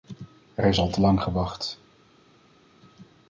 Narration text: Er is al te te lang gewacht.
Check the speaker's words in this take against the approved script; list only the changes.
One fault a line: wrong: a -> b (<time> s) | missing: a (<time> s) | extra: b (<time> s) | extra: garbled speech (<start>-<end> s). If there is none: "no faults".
missing: te (1.0 s)